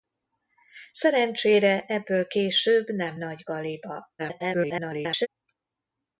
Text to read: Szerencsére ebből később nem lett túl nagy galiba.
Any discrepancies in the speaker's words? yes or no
yes